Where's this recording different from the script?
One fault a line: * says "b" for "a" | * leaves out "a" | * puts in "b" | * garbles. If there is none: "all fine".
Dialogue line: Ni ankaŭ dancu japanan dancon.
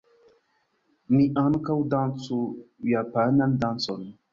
all fine